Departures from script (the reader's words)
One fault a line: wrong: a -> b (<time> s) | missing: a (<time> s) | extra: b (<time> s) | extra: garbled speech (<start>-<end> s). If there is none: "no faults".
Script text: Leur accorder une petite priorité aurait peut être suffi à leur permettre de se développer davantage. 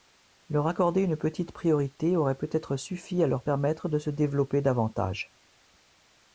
no faults